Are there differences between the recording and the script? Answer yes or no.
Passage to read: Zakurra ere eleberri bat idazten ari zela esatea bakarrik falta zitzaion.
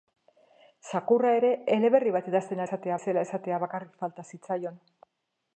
yes